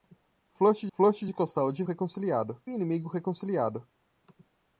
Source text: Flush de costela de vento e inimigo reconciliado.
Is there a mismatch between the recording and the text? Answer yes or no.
yes